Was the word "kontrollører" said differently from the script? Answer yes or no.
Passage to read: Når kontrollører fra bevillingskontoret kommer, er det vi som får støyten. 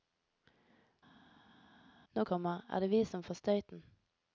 yes